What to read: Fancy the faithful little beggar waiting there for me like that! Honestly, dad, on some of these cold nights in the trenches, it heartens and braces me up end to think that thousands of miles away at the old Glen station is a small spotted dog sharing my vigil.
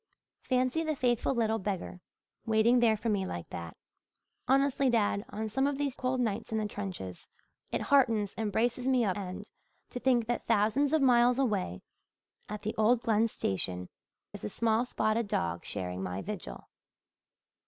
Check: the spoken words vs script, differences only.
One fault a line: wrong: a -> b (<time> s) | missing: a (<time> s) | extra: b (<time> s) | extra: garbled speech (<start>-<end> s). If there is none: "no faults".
no faults